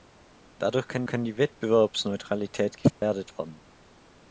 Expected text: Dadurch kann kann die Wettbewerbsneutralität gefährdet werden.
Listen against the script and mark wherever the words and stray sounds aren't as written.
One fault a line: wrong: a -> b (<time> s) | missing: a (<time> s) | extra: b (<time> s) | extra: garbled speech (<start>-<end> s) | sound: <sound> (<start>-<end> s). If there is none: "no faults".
sound: dropout (2.9-3.0 s)